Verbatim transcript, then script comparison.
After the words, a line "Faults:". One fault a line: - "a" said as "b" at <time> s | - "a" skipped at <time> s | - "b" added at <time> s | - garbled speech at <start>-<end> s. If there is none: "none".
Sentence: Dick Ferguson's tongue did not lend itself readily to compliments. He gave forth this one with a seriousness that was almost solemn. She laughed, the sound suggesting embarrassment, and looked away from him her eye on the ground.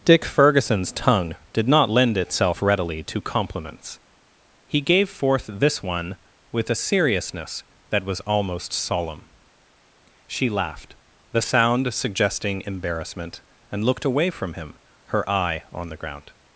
Dick Ferguson's tongue did not lend itself readily to compliments. He gave forth this one with a seriousness that was almost solemn. She laughed, the sound suggesting embarrassment, and looked away from him her eye on the ground.
Faults:
none